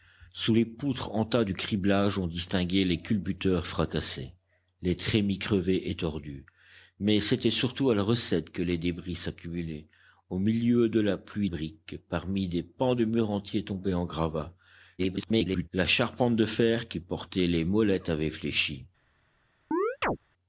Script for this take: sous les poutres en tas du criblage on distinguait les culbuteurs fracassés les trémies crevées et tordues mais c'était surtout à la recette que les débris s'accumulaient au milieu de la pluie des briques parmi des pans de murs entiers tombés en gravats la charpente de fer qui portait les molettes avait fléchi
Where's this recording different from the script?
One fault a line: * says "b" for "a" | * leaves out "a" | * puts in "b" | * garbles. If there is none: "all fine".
* leaves out "des"
* garbles